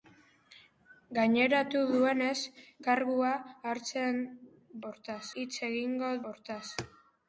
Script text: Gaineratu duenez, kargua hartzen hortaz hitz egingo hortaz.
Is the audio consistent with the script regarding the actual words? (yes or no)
yes